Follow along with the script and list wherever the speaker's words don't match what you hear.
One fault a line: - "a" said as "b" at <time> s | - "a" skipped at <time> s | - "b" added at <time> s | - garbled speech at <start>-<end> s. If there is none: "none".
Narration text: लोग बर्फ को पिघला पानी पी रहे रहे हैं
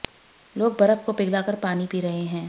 - "कर" added at 1.4 s
- "रहे" skipped at 2.2 s